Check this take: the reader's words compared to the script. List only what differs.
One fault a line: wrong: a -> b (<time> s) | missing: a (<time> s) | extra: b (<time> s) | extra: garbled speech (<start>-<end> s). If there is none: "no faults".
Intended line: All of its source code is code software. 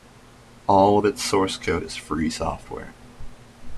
wrong: code -> free (2.0 s)